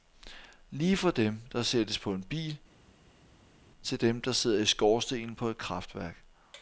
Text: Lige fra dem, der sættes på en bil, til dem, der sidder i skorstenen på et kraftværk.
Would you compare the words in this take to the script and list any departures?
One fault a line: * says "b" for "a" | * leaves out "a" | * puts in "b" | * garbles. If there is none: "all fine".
all fine